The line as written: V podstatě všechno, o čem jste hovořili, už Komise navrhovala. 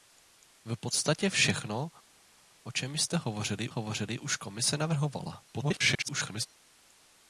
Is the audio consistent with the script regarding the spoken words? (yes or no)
no